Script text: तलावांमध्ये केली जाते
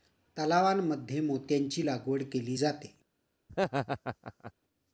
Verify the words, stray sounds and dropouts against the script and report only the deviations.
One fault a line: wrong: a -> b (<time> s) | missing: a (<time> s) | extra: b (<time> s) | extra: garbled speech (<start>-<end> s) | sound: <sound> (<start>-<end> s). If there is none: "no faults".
extra: मोत्यांची लागवड (1.2 s)
sound: laugh (3.5-4.5 s)